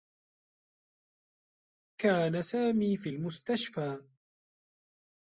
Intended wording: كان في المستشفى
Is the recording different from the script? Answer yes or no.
yes